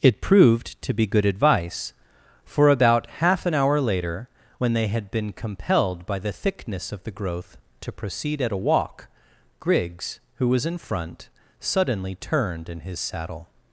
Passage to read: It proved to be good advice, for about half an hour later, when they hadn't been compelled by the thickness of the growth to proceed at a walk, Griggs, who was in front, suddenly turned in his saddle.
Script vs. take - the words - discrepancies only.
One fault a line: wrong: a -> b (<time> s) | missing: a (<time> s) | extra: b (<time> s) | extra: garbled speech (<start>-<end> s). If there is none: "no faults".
wrong: hadn't -> had (4.9 s)